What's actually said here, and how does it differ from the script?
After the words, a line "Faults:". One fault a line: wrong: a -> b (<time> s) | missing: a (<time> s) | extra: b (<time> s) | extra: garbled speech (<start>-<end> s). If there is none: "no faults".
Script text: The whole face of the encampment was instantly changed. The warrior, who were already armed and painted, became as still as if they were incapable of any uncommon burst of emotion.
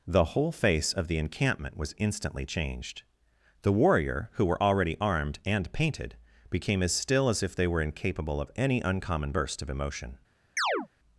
The whole face of the encampment was instantly changed. The warrior, who were already armed and painted, became as still as if they were incapable of any uncommon burst of emotion.
Faults:
no faults